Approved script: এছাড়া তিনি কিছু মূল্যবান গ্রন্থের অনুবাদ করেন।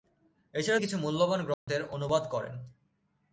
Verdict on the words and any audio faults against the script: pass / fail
fail